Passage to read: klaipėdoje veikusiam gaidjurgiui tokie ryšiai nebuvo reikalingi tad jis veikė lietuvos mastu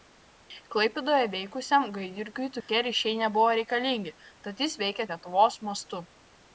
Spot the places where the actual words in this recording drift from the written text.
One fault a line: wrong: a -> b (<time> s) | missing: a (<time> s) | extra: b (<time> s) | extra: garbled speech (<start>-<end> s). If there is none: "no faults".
no faults